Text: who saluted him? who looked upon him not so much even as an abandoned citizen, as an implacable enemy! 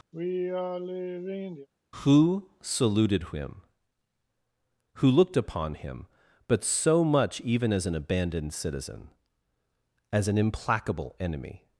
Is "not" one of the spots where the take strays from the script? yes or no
yes